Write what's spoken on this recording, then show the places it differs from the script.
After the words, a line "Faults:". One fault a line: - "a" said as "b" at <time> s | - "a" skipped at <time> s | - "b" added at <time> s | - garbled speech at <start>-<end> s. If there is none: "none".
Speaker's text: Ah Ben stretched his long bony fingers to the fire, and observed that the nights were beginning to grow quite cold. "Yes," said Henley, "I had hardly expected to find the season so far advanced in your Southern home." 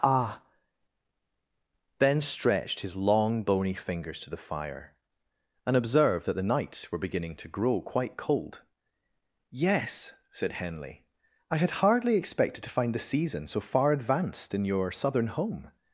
Ah Ben stretched his long bony fingers to the fire, and observed that the nights were beginning to grow quite cold. "Yes," said Henley, "I had hardly expected to find the season so far advanced in your Southern home."
Faults:
none